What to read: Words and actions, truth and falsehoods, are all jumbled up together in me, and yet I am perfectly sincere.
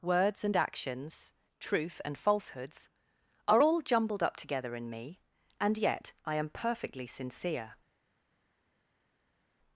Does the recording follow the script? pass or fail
pass